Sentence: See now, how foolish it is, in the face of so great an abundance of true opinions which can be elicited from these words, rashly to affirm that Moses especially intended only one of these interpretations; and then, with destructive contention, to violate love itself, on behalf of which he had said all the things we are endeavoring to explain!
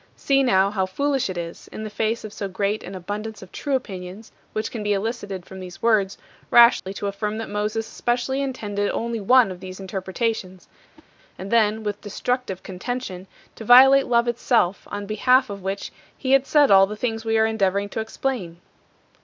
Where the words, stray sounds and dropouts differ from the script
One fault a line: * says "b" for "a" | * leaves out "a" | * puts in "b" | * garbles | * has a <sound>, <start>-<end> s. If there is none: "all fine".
* has a dropout, 6.8-6.9 s
* has a whoosh, 11.0-11.1 s